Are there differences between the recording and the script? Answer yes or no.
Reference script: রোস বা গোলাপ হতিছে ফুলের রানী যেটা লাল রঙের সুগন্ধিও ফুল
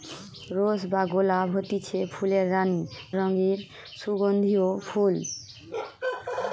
yes